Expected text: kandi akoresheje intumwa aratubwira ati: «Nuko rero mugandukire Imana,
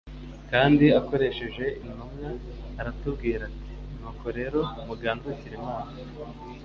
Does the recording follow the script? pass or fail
pass